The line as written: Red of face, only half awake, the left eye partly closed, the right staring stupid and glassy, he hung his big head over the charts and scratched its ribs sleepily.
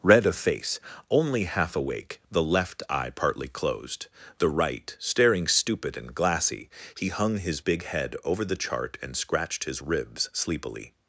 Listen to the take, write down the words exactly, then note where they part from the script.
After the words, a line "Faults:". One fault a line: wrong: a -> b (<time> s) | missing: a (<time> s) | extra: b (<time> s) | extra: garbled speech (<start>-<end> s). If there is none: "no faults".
Red of face, only half awake, the left eye partly closed, the right staring stupid and glassy, he hung his big head over the chart and scratched his ribs sleepily.
Faults:
wrong: charts -> chart (8.5 s)
wrong: its -> his (9.6 s)